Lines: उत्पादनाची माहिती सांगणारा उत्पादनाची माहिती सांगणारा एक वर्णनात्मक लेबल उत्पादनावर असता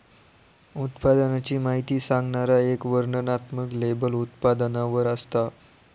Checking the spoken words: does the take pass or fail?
fail